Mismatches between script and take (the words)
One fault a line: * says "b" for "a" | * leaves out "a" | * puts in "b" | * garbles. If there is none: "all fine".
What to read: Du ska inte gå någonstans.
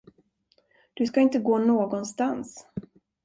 all fine